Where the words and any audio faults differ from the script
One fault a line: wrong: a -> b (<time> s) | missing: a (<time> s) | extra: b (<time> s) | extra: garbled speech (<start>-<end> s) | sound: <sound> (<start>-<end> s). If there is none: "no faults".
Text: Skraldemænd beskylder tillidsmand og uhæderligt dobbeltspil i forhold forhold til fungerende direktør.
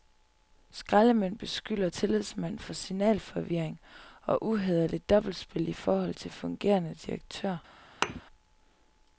extra: for signalforvirring (2.6 s)
missing: forhold (6.1 s)
sound: thud (8.0-8.2 s)